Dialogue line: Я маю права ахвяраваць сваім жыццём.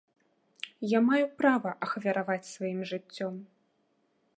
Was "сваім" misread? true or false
false